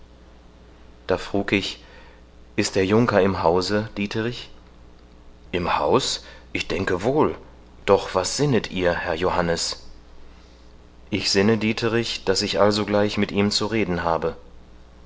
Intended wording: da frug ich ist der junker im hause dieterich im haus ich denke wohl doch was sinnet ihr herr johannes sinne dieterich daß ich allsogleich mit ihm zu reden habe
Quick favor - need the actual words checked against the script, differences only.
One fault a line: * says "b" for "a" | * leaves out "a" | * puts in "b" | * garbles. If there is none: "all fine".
* puts in "ich"